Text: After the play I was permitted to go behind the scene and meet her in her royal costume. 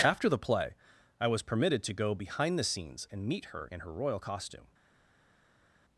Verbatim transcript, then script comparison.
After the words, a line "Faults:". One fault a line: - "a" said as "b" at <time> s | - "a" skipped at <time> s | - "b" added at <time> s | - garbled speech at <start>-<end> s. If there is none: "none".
After the play I was permitted to go behind the scenes and meet her in her royal costume.
Faults:
- "scene" said as "scenes" at 2.6 s